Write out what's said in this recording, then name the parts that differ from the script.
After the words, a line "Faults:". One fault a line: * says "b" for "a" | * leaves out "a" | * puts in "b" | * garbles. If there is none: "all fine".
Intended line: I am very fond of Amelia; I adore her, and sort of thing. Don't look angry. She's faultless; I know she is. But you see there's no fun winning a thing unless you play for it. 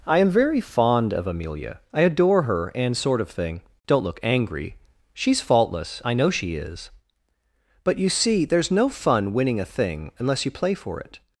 I am very fond of Amelia; I adore her, and sort of thing. Don't look angry. She's faultless; I know she is. But you see there's no fun winning a thing unless you play for it.
Faults:
all fine